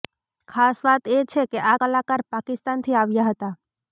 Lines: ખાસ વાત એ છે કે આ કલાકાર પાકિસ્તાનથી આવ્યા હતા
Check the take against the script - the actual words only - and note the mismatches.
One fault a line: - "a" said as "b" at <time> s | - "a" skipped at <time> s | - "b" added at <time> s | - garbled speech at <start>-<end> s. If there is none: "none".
none